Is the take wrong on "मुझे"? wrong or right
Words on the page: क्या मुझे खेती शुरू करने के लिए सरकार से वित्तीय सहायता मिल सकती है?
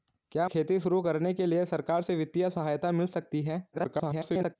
wrong